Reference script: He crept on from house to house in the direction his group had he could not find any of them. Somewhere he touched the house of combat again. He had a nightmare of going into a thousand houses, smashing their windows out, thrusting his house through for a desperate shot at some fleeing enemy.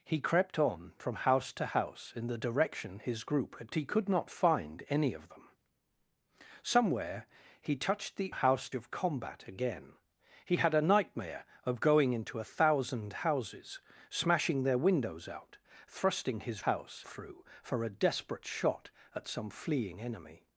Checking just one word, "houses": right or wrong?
right